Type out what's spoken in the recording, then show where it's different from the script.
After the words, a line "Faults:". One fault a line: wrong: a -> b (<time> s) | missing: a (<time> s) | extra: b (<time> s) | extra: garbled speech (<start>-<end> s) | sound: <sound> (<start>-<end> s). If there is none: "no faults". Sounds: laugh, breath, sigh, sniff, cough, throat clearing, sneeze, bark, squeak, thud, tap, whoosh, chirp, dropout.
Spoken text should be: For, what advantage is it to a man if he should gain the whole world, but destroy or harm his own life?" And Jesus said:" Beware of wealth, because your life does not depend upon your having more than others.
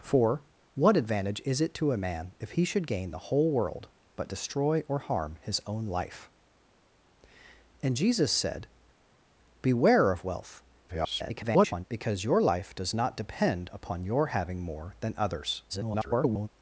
For, what advantage is it to a man if he should gain the whole world, but destroy or harm his own life?" And Jesus said:" Beware of wealth, [garbled] because your life does not depend upon your having more than others. [garbled]
Faults:
extra: garbled speech (10.9-11.8 s)
extra: garbled speech (15.7-16.5 s)